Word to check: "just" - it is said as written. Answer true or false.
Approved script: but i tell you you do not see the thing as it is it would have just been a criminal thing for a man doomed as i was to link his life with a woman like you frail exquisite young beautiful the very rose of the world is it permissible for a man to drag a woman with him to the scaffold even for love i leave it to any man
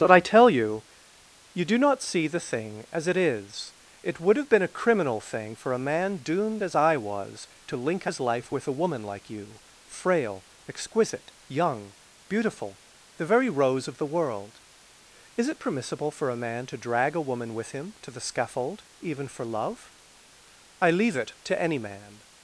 false